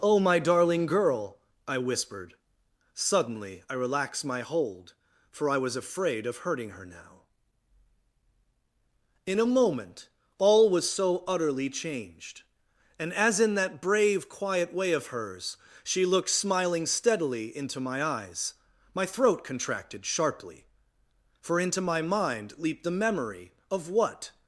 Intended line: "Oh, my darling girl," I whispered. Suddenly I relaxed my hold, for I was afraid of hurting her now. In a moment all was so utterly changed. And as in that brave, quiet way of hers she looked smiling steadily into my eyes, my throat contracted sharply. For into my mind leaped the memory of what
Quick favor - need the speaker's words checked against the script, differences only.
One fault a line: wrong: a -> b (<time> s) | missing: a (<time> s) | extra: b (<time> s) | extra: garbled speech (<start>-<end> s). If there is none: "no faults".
no faults